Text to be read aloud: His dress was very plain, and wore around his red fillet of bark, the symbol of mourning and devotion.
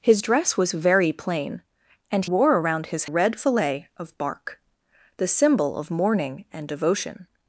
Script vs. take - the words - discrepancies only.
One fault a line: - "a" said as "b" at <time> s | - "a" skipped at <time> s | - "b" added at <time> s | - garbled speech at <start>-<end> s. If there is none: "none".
none